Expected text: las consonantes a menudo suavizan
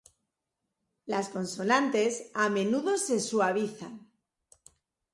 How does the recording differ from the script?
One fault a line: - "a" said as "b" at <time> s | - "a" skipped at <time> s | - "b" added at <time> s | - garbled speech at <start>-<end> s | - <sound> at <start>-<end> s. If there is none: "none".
- "se" added at 3.0 s